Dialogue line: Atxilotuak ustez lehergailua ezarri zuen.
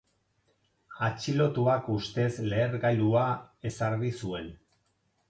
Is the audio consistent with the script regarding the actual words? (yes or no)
yes